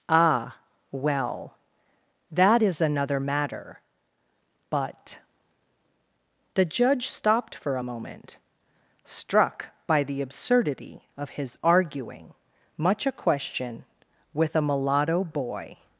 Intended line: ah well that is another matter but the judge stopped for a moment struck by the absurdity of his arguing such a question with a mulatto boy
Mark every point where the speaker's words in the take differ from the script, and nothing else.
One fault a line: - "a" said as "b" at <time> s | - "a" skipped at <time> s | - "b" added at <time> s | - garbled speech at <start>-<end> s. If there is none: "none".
- "such" said as "much" at 12.8 s